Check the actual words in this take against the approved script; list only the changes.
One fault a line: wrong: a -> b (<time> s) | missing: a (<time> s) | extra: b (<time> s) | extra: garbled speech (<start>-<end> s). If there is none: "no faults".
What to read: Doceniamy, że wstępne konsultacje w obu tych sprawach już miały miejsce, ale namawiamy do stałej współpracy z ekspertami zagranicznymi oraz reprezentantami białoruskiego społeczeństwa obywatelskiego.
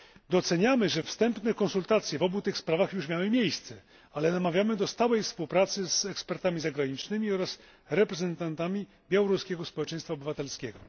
no faults